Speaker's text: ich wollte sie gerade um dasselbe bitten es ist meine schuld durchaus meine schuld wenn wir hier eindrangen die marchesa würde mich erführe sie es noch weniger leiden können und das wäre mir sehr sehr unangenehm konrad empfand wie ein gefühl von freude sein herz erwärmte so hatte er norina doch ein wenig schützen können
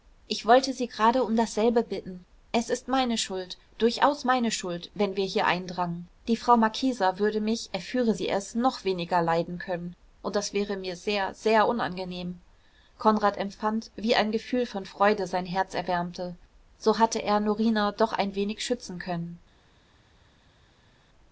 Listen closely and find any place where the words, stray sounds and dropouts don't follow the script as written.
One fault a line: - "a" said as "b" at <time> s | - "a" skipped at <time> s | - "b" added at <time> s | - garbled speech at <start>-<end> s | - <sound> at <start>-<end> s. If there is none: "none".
- "frau" added at 6.4 s